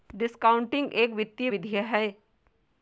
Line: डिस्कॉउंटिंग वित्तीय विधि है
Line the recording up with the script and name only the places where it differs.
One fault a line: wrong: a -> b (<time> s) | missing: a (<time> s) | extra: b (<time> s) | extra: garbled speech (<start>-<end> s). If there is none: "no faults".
extra: एक (0.9 s)